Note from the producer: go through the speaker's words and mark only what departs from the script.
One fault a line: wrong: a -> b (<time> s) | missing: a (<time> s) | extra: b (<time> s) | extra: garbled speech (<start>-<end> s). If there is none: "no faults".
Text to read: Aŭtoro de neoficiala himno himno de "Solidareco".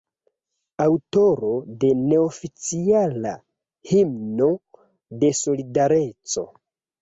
missing: himno (4.5 s)